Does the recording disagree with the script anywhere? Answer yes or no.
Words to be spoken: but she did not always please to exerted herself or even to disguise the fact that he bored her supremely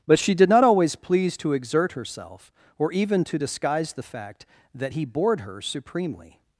yes